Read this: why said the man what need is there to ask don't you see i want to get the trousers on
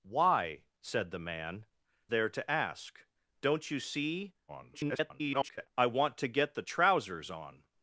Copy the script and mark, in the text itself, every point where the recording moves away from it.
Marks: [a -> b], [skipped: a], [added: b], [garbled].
why said the man [skipped: what need is] there to ask don't you see [garbled] i want to get the trousers on